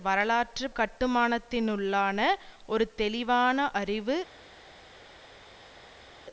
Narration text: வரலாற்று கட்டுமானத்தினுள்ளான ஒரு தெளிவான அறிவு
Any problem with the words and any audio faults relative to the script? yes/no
no